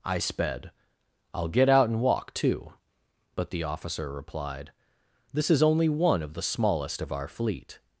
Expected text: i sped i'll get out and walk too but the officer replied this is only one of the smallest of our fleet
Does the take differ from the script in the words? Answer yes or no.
no